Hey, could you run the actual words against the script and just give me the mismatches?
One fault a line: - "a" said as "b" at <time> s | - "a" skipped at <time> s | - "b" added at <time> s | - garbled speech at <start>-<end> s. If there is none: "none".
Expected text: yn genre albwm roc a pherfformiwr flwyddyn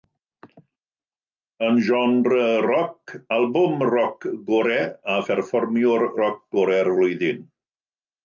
- "roc" added at 2.7 s
- "gorau" added at 4.5 s
- "roc gorau'r" added at 6.2 s